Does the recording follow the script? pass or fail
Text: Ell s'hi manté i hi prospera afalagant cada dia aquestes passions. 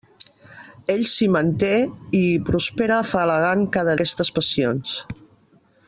fail